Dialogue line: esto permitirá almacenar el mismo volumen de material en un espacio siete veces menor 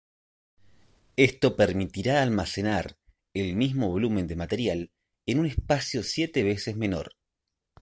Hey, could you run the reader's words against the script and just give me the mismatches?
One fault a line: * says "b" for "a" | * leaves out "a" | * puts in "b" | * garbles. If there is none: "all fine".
all fine